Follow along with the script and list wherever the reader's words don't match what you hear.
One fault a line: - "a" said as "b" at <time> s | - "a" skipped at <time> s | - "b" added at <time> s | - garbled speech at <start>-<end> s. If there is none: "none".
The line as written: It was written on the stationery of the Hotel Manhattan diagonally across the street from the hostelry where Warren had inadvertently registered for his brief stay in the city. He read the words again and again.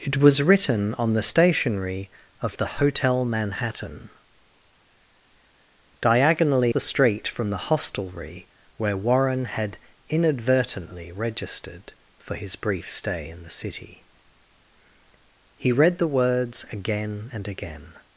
- "across" skipped at 6.7 s